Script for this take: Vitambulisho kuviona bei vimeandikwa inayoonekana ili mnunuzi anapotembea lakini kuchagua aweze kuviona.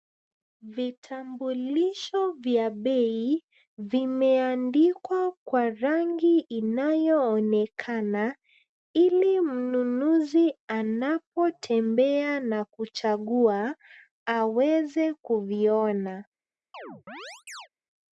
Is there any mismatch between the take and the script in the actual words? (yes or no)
yes